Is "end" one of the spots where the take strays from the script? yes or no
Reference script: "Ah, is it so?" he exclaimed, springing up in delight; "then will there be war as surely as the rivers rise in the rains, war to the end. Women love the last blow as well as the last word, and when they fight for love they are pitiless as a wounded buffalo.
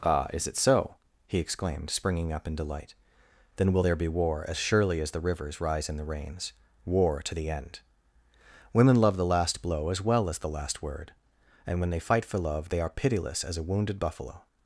no